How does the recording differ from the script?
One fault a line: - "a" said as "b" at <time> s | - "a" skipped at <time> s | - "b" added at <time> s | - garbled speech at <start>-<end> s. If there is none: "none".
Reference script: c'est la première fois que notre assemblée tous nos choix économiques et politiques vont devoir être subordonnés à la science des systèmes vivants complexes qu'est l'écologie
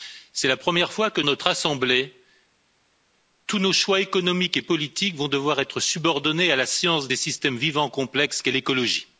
none